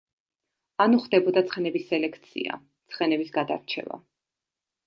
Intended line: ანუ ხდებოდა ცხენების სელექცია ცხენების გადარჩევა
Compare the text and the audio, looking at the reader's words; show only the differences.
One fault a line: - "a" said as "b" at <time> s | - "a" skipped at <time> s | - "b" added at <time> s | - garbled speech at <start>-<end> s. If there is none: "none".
none